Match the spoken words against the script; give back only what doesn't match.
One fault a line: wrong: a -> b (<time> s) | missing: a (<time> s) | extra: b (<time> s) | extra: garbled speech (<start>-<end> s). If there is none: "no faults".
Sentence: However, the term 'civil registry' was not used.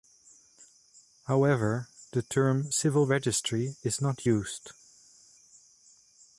wrong: was -> is (3.8 s)